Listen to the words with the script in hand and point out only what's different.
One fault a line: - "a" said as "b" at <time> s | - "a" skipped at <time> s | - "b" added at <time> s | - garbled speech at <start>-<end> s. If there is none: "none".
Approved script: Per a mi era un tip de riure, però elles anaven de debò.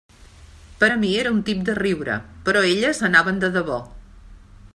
none